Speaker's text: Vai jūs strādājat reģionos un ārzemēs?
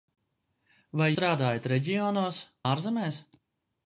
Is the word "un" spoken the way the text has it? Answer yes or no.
no